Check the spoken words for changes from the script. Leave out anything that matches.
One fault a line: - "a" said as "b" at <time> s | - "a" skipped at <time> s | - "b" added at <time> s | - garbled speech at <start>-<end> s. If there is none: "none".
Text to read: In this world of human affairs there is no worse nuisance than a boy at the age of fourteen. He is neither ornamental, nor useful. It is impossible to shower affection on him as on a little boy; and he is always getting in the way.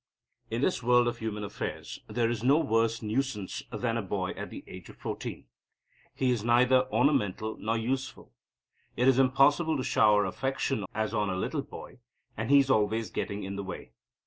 - "on him" skipped at 10.8 s